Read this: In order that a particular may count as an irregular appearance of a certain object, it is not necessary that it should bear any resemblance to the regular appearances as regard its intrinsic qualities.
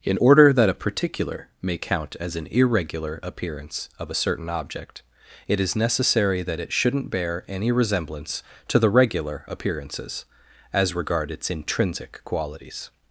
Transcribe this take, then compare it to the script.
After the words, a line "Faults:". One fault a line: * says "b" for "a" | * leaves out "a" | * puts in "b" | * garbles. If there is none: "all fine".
In order that a particular may count as an irregular appearance of a certain object, it is necessary that it shouldn't bear any resemblance to the regular appearances as regard its intrinsic qualities.
Faults:
* leaves out "not"
* says "shouldn't" for "should"